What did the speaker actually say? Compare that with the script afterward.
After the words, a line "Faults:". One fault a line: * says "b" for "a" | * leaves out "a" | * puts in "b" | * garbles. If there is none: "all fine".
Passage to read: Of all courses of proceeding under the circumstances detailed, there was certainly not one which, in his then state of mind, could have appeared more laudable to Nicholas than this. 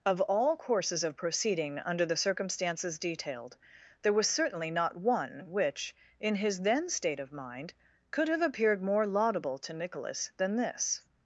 Of all courses of proceeding under the circumstances detailed, there was certainly not one which, in his then state of mind, could have appeared more laudable to Nicholas than this.
Faults:
all fine